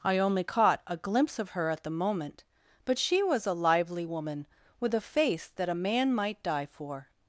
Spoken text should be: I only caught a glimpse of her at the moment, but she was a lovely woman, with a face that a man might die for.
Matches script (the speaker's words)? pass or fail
fail